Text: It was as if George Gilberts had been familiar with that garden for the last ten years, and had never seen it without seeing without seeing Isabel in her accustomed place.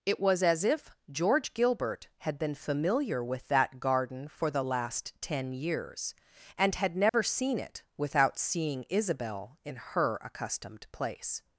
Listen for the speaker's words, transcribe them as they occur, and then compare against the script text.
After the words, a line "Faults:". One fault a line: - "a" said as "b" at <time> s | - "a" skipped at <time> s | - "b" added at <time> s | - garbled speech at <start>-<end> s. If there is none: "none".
It was as if George Gilbert had been familiar with that garden for the last ten years, and had never seen it without seeing Isabel in her accustomed place.
Faults:
- "Gilberts" said as "Gilbert" at 1.5 s
- "without seeing" skipped at 8.8 s